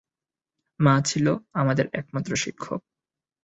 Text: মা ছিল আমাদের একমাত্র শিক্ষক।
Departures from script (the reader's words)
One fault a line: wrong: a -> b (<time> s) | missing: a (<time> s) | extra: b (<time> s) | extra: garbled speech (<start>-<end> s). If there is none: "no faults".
no faults